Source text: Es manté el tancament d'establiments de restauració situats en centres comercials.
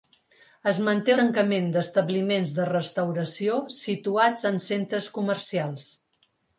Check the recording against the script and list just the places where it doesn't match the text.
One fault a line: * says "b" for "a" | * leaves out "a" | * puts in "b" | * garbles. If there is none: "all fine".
* leaves out "el"